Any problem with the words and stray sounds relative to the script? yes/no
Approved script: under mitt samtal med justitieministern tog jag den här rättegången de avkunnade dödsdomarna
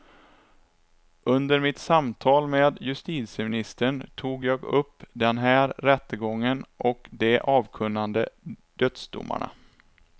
yes